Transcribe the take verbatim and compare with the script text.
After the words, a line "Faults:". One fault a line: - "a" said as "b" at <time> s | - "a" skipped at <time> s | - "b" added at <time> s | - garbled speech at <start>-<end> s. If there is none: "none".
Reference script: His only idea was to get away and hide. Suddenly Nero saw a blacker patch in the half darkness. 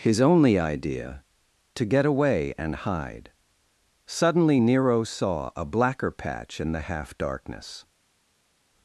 His only idea to get away and hide. Suddenly Nero saw a blacker patch in the half darkness.
Faults:
- "was" skipped at 1.2 s